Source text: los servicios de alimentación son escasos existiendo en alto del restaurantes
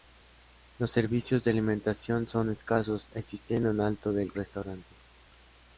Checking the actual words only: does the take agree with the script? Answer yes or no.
yes